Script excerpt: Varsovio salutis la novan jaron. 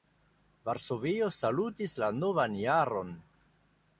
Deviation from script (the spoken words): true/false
false